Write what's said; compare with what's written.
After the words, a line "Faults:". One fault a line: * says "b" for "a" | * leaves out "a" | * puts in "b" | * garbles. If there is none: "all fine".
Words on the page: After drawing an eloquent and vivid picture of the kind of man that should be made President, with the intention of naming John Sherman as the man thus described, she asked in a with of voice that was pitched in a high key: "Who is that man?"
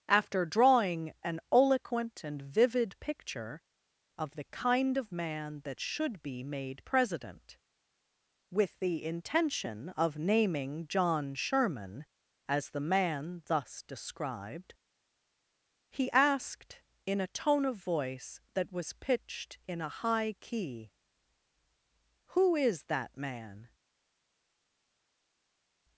After drawing an eloquent and vivid picture of the kind of man that should be made President, with the intention of naming John Sherman as the man thus described, he asked in a tone of voice that was pitched in a high key: "Who is that man?"
Faults:
* says "he" for "she"
* says "tone" for "with"